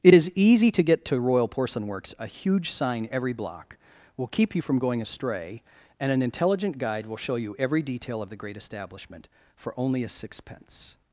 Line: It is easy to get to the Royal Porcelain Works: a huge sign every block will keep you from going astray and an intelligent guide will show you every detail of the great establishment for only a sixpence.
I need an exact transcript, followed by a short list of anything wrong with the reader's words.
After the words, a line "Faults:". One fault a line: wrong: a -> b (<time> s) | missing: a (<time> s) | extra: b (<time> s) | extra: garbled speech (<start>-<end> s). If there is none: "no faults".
It is easy to get to Royal Porcelain Works: a huge sign every block will keep you from going astray and an intelligent guide will show you every detail of the great establishment for only a sixpence.
Faults:
missing: the (1.2 s)